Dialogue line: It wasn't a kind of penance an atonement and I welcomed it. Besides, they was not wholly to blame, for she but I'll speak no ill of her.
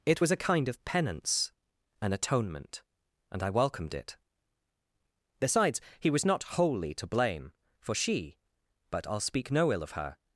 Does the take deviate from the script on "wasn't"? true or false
true